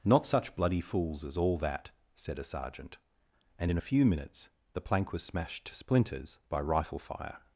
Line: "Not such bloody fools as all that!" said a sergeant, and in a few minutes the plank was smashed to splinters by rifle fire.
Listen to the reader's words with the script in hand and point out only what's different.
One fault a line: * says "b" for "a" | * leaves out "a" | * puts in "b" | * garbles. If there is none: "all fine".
all fine